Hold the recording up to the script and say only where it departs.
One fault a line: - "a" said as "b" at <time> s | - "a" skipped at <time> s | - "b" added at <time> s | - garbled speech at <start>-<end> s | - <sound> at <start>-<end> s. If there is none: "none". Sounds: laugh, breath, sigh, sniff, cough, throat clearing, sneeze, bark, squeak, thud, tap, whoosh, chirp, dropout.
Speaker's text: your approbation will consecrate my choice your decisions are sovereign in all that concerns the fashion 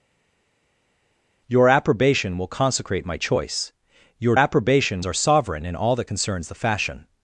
- "decisions" said as "approbation" at 4.4 s